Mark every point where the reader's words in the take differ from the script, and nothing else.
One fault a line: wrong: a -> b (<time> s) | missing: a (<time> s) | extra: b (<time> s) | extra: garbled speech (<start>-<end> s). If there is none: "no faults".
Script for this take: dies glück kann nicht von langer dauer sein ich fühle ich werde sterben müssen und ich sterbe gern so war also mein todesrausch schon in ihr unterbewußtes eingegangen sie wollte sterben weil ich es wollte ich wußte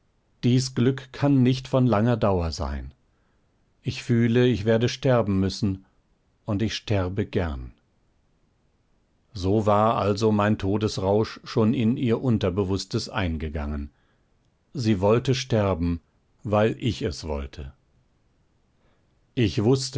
no faults